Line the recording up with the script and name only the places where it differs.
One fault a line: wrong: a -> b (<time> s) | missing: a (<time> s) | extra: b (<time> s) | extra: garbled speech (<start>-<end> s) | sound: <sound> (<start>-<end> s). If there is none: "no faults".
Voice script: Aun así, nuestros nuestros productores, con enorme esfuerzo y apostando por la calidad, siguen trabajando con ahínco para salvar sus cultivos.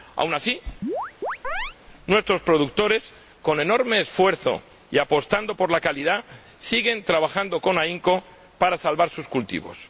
sound: chirp (0.8-1.8 s)
missing: nuestros (2.4 s)